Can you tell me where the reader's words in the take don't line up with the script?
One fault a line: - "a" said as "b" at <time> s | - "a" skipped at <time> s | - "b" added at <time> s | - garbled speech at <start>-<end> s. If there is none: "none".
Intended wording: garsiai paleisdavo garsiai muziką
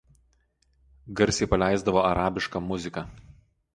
- "garsiai" said as "arabišką" at 2.1 s